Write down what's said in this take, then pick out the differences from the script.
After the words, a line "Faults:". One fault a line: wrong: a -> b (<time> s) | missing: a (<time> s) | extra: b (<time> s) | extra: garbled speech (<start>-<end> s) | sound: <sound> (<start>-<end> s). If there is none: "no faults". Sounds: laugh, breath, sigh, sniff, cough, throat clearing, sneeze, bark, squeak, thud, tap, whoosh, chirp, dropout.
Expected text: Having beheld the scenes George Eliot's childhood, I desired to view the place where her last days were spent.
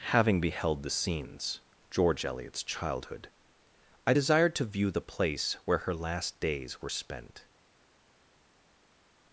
Having beheld the scenes George Eliot's childhood, I desired to view the place where her last days were spent.
Faults:
no faults